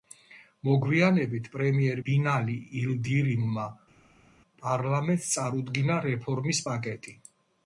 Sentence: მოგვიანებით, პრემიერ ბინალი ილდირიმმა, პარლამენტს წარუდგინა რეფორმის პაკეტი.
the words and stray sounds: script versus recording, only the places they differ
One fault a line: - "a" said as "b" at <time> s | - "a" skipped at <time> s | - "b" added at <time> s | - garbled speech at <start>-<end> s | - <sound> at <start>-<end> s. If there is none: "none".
none